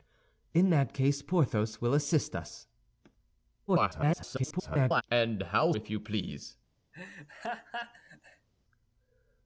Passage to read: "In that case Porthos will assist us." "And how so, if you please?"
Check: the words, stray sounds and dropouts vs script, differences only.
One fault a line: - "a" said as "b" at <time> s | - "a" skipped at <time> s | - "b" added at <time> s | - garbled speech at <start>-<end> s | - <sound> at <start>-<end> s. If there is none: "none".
- garbled speech at 3.7-5.0 s
- "so" skipped at 5.7 s
- laugh at 6.9-8.5 s